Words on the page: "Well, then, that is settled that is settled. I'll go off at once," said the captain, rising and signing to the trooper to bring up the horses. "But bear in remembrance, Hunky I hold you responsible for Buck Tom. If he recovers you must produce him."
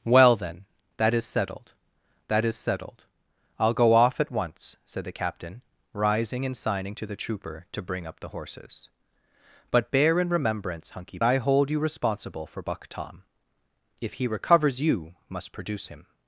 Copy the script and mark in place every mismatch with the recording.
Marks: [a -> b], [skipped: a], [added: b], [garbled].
"Well, then, that is settled that is settled. I'll go off at once," said the captain, rising and signing to the trooper to bring up the horses. "But bear in remembrance, Hunky I hold you responsible for Buck Tom. If he recovers you must produce him."